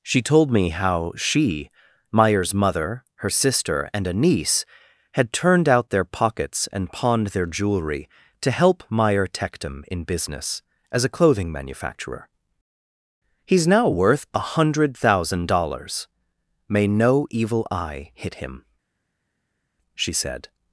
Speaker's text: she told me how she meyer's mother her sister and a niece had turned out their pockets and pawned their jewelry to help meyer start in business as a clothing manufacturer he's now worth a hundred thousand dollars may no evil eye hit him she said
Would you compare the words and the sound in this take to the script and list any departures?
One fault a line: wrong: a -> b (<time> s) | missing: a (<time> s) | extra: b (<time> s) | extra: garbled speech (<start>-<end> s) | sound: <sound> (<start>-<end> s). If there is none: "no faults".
wrong: start -> tectum (9.3 s)